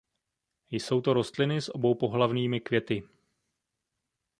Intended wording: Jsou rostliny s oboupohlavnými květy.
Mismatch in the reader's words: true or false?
true